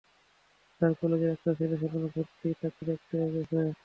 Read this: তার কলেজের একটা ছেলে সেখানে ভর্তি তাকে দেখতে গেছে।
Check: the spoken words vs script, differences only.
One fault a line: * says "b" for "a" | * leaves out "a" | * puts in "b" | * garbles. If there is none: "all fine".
all fine